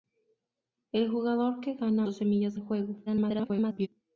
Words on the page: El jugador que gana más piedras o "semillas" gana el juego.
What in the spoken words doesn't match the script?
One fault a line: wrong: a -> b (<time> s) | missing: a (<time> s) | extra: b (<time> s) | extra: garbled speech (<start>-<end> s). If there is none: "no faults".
missing: más piedras (2.1 s)
missing: gana (2.6 s)
extra: garbled speech (3.1-3.9 s)